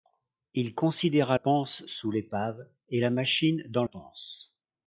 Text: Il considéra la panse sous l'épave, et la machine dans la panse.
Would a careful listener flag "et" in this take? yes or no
no